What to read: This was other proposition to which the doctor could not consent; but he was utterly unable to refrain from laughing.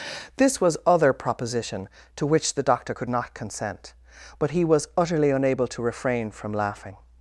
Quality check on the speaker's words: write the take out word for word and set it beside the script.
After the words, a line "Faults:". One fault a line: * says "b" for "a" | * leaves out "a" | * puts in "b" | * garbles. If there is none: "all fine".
This was other proposition to which the doctor could not consent; but he was utterly unable to refrain from laughing.
Faults:
all fine